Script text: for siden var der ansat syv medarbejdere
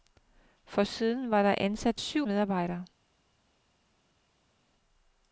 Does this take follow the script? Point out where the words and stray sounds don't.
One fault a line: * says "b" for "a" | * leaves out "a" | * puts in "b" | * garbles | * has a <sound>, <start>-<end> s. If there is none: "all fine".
all fine